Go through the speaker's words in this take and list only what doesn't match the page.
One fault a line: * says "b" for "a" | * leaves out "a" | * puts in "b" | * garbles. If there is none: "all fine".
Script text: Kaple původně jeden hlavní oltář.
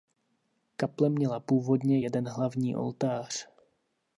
* puts in "měla"